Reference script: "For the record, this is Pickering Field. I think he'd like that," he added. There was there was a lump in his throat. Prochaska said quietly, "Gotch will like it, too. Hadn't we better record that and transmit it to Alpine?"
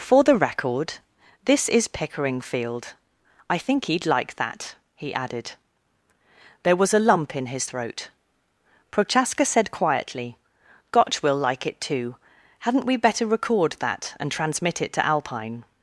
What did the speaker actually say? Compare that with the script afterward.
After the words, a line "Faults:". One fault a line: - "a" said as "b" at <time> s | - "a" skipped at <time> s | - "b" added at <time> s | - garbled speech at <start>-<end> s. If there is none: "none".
"For the record, this is Pickering Field. I think he'd like that," he added. There was a lump in his throat. Prochaska said quietly, "Gotch will like it, too. Hadn't we better record that and transmit it to Alpine?"
Faults:
- "there was" skipped at 6.9 s